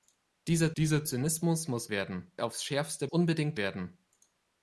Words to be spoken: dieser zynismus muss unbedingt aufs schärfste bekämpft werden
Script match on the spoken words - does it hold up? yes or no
no